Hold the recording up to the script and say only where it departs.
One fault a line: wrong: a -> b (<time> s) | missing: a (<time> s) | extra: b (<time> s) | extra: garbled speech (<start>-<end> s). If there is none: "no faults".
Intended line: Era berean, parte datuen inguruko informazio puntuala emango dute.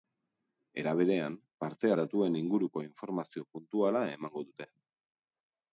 no faults